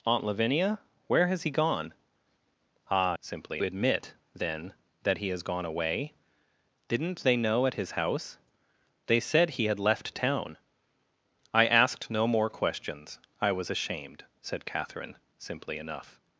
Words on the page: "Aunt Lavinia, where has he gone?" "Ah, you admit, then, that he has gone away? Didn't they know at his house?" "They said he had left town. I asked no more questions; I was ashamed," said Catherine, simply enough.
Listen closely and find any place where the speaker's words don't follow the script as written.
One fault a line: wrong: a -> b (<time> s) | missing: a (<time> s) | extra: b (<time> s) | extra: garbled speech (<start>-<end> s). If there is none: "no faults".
wrong: you -> simply (3.2 s)